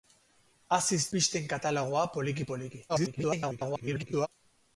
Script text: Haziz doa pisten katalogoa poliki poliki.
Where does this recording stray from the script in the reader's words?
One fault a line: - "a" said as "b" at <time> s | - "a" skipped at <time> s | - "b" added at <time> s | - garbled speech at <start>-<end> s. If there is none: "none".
- "doa" skipped at 1.0 s
- garbled speech at 2.9-4.3 s